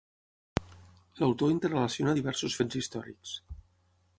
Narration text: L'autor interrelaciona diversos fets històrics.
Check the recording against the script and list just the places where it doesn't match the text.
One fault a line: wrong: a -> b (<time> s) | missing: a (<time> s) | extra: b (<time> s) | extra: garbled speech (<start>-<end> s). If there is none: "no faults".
no faults